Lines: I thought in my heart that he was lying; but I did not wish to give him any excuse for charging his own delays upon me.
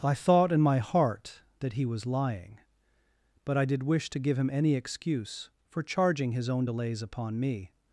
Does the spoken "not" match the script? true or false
false